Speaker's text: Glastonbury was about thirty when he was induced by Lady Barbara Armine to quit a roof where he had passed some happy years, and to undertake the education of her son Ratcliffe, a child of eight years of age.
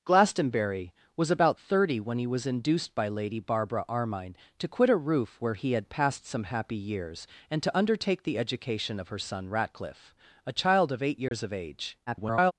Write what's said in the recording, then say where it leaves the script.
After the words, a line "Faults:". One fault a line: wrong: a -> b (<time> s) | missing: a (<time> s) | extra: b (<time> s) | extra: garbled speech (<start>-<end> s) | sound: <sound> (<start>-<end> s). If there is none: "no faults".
Glastonbury was about thirty when he was induced by Lady Barbara Armine to quit a roof where he had passed some happy years, and to undertake the education of her son Ratcliffe, a child of eight years of age. [garbled]
Faults:
sound: dropout (11.3-11.3 s)
extra: garbled speech (12.1-12.5 s)